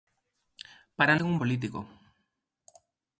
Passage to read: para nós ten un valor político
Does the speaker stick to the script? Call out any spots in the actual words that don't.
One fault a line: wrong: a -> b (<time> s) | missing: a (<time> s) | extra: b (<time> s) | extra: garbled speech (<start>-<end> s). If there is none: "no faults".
missing: nós (1.1 s)
missing: valor (1.4 s)